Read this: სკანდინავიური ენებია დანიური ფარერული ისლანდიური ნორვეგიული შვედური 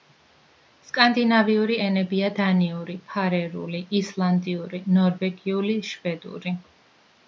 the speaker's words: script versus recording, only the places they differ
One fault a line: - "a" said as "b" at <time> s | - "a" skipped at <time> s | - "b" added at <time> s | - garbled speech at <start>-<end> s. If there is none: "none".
none